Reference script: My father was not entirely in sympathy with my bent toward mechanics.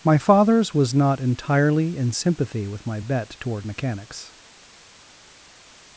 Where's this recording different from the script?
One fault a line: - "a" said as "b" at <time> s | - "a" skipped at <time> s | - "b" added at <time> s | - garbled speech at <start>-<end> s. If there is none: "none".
- "father" said as "fathers" at 0.2 s
- "bent" said as "bet" at 3.0 s